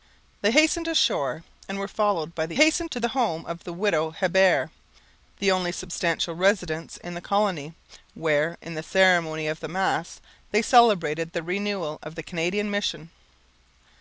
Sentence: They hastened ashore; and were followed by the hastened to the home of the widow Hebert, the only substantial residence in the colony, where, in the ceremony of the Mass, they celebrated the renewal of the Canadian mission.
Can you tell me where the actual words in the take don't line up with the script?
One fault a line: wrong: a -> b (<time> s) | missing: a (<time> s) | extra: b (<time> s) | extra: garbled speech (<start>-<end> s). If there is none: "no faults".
no faults